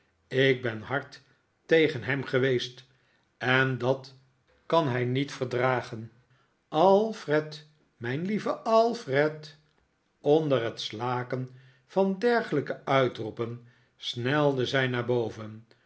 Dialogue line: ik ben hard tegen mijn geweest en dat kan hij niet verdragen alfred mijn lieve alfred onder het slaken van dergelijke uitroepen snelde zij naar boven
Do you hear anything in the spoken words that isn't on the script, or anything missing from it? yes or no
yes